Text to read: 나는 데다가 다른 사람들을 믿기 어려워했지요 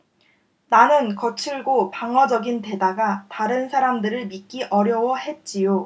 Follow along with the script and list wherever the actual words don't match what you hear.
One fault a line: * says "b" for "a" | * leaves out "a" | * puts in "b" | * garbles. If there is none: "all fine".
* puts in "거칠고 방어적인"